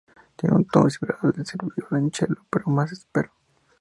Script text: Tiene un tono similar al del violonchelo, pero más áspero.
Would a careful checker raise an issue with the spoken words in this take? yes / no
no